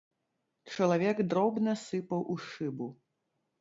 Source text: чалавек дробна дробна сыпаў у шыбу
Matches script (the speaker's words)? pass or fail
fail